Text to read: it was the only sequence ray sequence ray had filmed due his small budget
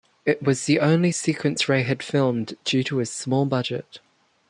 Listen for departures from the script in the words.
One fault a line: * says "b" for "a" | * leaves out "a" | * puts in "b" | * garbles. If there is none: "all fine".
* leaves out "sequence ray"
* puts in "to"